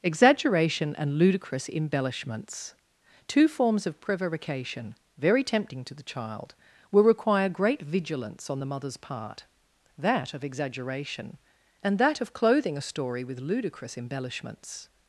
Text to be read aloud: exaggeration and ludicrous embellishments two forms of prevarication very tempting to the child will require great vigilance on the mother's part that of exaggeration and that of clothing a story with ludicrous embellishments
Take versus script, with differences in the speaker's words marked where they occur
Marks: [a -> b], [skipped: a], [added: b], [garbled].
exaggeration and ludicrous embellishments two forms of prevarication very tempting to the child will require great vigilance on the mother's part that of exaggeration and that of clothing a story with ludicrous embellishments